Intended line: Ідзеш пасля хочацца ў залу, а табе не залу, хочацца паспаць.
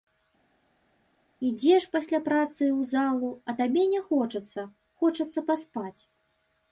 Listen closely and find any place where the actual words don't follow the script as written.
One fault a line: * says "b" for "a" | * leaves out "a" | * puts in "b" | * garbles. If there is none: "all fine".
* says "працы" for "хочацца"
* says "хочацца" for "залу"